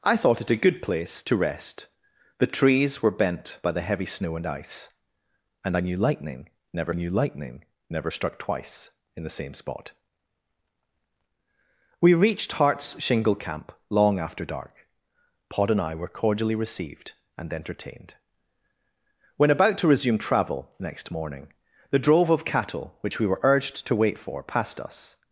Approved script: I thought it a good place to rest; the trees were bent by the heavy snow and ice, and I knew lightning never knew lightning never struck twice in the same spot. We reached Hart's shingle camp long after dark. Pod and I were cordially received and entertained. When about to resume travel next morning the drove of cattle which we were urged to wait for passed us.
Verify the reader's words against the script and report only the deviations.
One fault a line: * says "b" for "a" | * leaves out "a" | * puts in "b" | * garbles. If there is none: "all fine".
all fine